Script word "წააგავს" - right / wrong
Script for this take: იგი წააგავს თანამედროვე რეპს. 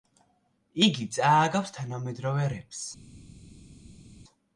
right